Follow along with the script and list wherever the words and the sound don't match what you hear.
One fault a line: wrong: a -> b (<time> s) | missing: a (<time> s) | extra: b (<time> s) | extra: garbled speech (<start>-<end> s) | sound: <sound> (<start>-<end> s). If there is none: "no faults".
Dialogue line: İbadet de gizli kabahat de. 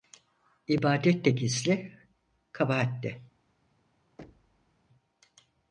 sound: thud (4.2-4.8 s)